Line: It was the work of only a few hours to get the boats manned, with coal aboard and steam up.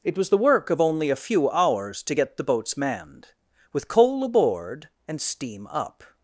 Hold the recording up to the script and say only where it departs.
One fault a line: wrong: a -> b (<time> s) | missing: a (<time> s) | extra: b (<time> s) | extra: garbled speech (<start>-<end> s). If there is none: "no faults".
no faults